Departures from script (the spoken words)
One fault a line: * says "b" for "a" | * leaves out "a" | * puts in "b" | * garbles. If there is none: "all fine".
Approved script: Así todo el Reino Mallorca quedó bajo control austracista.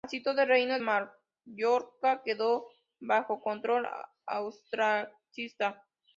all fine